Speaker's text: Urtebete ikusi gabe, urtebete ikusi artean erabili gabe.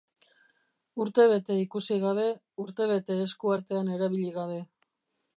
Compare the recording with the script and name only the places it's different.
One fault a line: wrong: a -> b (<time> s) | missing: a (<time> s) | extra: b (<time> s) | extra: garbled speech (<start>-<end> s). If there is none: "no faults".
wrong: ikusi -> esku (3.2 s)